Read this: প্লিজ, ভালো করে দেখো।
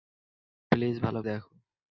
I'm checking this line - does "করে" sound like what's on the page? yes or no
no